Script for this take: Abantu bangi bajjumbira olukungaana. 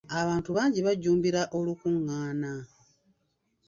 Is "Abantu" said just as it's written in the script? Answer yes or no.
yes